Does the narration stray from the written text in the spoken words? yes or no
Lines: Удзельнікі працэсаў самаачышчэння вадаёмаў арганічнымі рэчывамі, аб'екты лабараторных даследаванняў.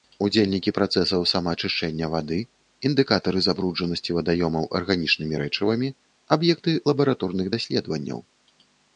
yes